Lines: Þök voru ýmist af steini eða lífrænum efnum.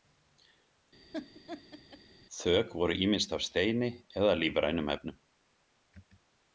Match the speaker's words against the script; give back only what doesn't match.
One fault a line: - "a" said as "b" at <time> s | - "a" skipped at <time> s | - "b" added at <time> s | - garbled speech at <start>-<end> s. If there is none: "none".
none